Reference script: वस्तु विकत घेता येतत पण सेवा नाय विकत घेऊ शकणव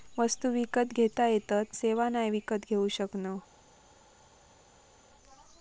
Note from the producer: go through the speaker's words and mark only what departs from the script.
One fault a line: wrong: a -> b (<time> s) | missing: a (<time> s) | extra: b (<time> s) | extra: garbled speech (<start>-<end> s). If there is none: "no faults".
missing: पण (1.7 s)